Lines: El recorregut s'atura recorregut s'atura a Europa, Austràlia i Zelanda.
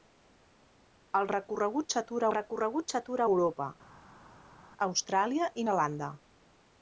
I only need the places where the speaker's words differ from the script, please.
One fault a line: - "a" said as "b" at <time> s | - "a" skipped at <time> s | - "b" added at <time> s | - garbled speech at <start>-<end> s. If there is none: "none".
none